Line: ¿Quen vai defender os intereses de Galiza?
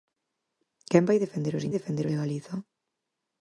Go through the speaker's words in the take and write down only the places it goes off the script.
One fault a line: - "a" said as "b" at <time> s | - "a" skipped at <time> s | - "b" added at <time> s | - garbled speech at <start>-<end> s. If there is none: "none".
- "intereses" said as "defender" at 1.7 s